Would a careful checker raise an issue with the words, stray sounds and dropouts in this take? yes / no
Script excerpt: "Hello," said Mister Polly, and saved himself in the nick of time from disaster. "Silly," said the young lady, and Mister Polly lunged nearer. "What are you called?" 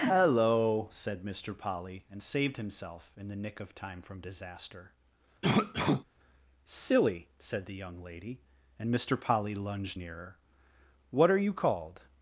yes